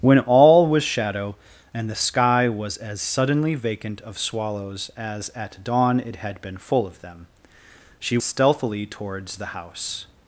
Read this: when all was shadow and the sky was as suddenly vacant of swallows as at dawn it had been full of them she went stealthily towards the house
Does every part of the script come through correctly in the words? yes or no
no